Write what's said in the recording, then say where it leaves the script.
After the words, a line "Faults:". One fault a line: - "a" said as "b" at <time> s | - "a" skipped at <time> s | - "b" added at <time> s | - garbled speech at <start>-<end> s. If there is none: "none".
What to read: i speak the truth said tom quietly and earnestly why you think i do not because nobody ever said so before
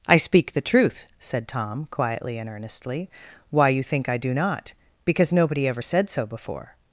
i speak the truth said tom quietly and earnestly why you think i do not because nobody ever said so before
Faults:
none